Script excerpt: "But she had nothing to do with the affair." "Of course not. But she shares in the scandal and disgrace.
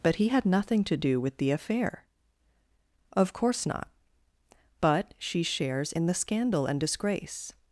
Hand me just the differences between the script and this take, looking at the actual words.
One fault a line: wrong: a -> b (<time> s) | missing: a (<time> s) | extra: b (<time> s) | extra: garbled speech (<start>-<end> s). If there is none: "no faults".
wrong: she -> he (0.1 s)